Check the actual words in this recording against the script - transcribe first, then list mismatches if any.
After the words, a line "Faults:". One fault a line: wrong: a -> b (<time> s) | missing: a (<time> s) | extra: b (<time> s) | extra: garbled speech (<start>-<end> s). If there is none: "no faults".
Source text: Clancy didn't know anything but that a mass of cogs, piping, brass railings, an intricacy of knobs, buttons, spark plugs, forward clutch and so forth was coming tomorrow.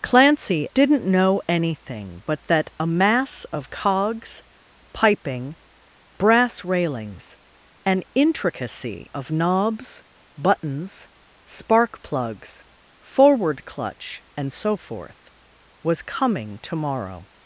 Clancy didn't know anything but that a mass of cogs, piping, brass railings, an intricacy of knobs, buttons, spark plugs, forward clutch and so forth was coming tomorrow.
Faults:
no faults